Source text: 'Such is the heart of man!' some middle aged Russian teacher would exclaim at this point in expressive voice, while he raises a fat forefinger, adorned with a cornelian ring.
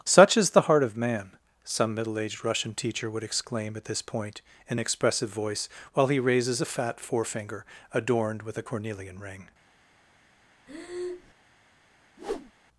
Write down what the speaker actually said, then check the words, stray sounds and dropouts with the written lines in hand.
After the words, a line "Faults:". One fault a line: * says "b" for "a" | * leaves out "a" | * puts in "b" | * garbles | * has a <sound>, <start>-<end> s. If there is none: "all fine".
'Such is the heart of man!' some middle aged Russian teacher would exclaim at this point in expressive voice, while he raises a fat forefinger, adorned with a cornelian ring.
Faults:
* has a breath, 10.7-11.3 s
* has a whoosh, 12.2-12.5 s